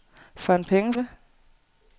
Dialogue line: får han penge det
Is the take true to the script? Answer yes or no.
yes